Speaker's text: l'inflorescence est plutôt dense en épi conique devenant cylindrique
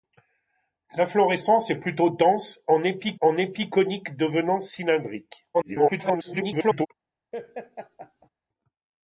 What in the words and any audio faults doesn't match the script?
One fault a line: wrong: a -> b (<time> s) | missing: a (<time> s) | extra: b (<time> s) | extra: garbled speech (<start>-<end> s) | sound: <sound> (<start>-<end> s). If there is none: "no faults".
extra: en épi (3.2 s)
extra: garbled speech (5.5-6.9 s)
sound: laugh (7.3-8.3 s)